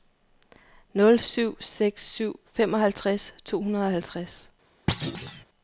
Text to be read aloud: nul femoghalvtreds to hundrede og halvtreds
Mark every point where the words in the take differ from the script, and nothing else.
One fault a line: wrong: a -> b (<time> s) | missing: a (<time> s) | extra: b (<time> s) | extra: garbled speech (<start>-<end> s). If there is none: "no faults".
extra: syv seks syv (1.2 s)